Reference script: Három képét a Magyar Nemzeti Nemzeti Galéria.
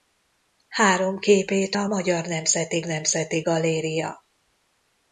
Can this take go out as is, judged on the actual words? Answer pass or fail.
pass